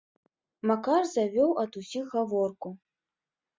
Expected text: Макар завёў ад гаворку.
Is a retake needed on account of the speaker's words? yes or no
yes